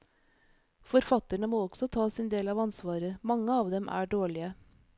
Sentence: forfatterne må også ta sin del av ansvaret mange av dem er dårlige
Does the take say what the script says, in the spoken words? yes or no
yes